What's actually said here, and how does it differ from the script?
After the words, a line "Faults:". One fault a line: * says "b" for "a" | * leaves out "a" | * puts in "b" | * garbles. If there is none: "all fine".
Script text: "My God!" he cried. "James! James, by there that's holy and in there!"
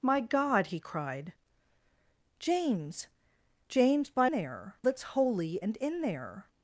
"My God!" he cried. "James! James, by there that's holy and in there!"
Faults:
all fine